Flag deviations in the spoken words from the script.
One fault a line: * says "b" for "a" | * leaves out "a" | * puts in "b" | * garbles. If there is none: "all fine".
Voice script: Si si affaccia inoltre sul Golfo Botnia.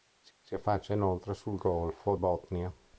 all fine